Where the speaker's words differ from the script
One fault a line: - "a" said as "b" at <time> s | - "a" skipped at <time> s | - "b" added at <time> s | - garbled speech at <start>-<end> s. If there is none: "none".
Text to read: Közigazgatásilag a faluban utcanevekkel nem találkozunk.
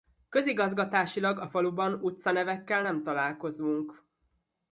none